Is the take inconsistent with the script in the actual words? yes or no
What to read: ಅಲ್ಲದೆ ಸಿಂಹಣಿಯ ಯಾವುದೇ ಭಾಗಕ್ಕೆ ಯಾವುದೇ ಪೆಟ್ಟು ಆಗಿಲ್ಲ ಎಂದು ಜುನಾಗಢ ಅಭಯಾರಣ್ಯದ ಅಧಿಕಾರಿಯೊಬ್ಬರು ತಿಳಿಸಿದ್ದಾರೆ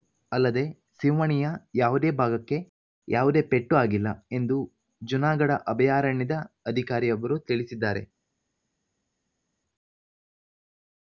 no